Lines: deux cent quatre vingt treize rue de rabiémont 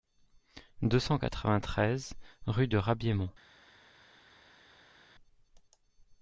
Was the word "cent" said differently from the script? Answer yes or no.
no